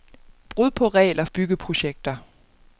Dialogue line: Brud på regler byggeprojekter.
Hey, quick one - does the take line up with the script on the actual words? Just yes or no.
yes